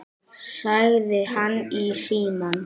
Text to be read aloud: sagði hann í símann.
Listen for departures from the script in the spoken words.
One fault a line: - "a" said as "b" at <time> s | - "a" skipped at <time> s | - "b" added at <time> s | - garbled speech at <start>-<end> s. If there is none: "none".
none